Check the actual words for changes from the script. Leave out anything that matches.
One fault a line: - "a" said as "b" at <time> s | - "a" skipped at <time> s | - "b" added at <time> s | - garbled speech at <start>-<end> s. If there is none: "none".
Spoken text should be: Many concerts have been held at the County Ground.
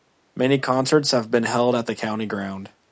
none